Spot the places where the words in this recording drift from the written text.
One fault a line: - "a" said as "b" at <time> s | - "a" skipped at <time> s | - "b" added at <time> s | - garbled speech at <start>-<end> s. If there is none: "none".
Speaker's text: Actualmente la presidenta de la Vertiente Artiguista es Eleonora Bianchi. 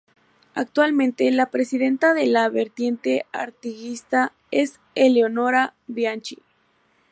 none